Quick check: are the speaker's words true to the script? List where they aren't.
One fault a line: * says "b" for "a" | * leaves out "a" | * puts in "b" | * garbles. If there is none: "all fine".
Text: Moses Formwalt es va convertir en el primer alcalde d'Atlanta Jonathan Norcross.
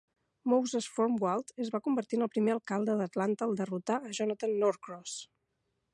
* puts in "al derrotar a"